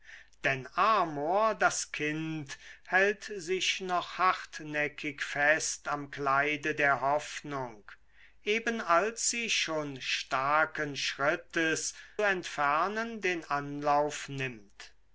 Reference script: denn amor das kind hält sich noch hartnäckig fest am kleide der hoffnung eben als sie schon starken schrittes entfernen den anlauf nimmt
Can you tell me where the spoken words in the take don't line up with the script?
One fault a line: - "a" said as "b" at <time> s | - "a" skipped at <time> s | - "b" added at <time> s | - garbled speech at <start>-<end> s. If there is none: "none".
none